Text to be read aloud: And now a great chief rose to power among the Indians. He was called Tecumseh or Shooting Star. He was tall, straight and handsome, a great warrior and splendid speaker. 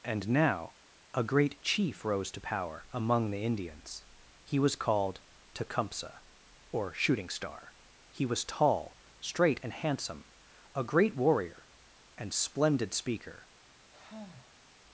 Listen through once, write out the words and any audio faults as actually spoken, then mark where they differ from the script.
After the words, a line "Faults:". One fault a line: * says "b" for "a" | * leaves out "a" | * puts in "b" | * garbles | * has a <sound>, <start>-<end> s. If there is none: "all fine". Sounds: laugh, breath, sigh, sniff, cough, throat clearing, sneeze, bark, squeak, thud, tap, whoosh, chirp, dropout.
And now a great chief rose to power among the Indians. He was called Tecumseh or Shooting Star. He was tall, straight and handsome, a great warrior and splendid speaker.
Faults:
* has a sigh, 13.9-14.7 s